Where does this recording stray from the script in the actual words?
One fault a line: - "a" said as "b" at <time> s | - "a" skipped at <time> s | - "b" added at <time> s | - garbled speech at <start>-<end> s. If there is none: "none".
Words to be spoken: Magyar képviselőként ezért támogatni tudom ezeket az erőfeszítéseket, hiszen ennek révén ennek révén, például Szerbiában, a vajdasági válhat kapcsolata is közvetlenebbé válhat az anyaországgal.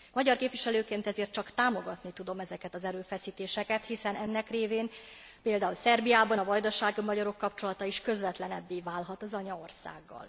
- "csak" added at 1.3 s
- "ennek révén" skipped at 4.9 s
- "válhat" said as "magyarok" at 7.0 s